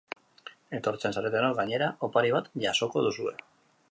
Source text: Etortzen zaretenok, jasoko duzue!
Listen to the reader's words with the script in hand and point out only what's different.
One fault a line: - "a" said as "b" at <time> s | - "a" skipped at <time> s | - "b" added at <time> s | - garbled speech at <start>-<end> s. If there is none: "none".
- "gainera opari bat" added at 1.6 s